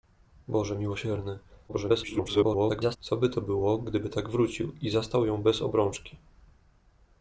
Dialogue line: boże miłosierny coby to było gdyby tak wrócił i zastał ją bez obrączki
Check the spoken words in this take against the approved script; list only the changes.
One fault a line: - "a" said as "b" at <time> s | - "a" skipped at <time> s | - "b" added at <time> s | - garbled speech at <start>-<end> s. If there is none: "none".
- garbled speech at 1.7-3.0 s